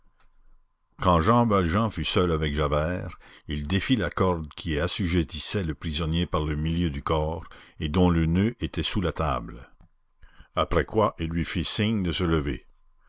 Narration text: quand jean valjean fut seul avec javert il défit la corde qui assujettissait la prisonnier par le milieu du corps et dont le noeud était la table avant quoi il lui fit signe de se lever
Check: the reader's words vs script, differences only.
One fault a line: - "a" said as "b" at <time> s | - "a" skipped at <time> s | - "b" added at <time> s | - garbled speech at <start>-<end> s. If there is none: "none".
- "la" said as "le" at 5.6 s
- "sous" added at 8.8 s
- "avant" said as "après" at 10.5 s